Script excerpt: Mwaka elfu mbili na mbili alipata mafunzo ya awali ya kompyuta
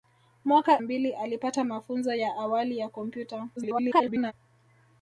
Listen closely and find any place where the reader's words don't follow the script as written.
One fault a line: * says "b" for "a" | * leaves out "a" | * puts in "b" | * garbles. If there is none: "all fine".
* leaves out "elfu mbili na"
* garbles